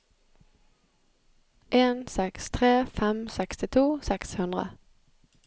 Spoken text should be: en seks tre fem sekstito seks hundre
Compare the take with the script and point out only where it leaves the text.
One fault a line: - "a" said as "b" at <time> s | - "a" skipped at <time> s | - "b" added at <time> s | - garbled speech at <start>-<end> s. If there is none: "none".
none